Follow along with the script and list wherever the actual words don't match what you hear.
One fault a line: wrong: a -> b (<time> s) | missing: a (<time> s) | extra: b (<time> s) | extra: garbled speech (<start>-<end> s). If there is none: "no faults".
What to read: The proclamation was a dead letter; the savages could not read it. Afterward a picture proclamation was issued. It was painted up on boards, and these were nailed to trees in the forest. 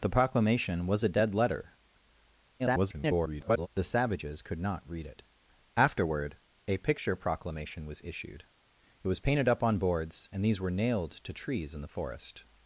extra: garbled speech (2.6-3.7 s)